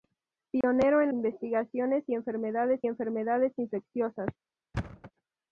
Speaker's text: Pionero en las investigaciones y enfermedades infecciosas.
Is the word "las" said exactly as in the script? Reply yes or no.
no